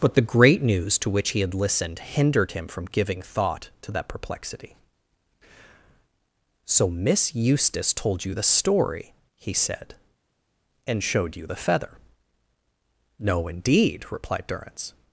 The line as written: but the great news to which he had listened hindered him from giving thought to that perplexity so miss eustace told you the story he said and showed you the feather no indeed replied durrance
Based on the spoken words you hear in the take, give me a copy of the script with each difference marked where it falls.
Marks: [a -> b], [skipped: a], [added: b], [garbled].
but the great news to which he had listened hindered him from giving thought to that perplexity so miss eustace told you the story he said and showed you the feather no indeed replied durrance